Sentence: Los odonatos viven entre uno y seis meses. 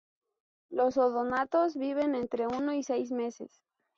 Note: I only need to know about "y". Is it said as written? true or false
true